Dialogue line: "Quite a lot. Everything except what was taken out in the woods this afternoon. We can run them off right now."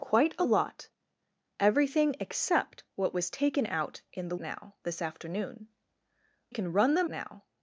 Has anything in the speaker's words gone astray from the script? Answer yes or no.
yes